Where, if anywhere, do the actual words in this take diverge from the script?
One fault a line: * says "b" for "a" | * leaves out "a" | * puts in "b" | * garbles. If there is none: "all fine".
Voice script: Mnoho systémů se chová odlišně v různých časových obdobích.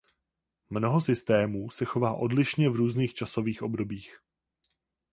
all fine